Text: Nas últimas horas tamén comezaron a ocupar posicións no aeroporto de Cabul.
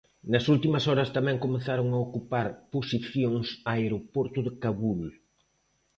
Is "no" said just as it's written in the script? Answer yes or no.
no